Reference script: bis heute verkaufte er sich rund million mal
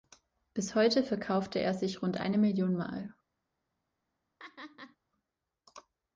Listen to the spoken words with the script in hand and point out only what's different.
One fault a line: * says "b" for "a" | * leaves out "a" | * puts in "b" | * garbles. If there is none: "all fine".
* puts in "eine"